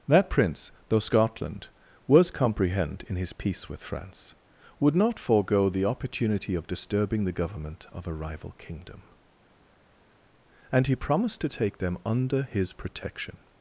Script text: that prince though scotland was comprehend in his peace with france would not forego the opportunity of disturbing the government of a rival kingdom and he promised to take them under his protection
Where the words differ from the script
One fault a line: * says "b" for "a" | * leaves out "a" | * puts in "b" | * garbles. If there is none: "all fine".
all fine